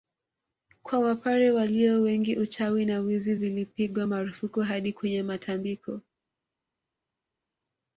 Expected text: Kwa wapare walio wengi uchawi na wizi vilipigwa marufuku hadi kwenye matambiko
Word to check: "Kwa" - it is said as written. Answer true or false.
true